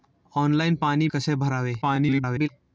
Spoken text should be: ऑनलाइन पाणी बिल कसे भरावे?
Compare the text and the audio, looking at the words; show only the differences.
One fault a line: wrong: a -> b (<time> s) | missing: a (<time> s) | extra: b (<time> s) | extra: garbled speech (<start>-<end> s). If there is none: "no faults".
missing: बिल (1.1 s)
extra: garbled speech (1.8-2.5 s)